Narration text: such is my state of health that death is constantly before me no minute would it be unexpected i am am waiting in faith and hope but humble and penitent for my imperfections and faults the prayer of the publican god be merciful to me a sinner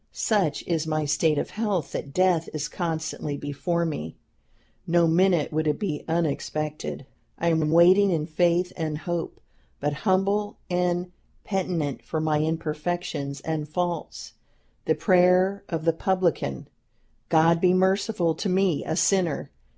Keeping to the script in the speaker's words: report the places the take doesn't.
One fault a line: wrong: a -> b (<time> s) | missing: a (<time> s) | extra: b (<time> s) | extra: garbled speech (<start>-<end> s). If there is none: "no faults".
no faults